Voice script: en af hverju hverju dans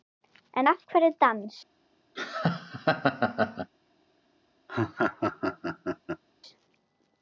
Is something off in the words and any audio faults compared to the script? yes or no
yes